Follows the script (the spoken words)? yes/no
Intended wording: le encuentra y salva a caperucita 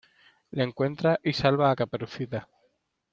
yes